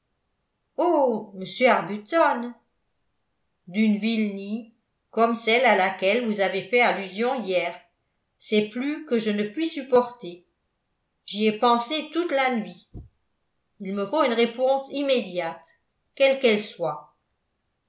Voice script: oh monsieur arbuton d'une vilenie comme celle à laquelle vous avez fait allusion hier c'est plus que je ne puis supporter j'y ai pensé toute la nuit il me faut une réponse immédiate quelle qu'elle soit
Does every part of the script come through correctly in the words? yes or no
yes